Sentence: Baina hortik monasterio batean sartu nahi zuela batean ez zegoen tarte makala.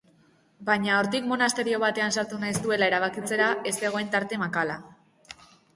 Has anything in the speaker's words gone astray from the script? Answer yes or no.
yes